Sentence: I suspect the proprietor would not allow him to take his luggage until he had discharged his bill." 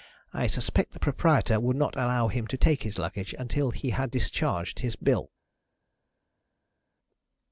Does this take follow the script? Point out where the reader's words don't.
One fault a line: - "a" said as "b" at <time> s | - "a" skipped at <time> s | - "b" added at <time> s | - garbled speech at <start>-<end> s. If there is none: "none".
none